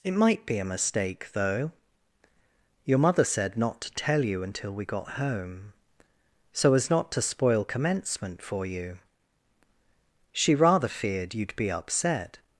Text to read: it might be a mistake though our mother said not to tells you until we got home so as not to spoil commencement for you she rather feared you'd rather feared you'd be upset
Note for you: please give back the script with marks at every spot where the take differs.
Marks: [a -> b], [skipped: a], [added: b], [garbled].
it might be a mistake though [our -> your] mother said not to [tells -> tell] you until we got home so as not to spoil commencement for you she rather feared you'd [skipped: rather feared you'd] be upset